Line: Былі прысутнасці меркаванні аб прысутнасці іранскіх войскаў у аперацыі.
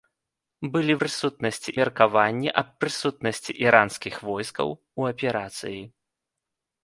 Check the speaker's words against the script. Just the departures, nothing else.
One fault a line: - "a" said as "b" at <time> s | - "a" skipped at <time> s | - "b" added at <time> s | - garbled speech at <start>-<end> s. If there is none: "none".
none